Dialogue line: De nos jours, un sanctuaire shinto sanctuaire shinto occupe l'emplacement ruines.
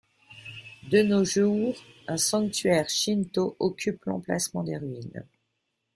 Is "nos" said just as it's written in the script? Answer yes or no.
yes